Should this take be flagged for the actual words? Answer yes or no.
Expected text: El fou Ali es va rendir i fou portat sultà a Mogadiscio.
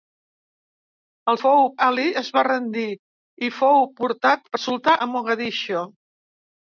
no